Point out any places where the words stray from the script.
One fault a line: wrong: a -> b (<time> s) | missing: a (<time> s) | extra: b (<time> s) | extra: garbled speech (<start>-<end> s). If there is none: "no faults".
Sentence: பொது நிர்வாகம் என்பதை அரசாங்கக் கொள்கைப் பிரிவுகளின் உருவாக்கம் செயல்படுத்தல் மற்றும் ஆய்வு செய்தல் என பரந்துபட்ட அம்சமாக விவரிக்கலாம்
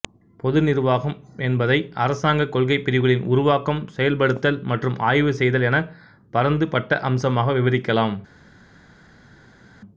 no faults